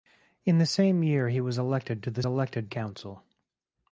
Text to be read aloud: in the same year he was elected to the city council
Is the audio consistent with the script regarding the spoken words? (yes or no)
no